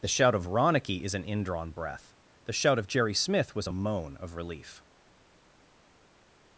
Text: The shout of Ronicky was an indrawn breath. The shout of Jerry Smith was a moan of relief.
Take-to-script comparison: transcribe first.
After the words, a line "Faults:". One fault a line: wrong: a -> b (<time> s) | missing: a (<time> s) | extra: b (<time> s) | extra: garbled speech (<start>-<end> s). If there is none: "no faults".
The shout of Ronicky is an indrawn breath. The shout of Jerry Smith was a moan of relief.
Faults:
wrong: was -> is (1.0 s)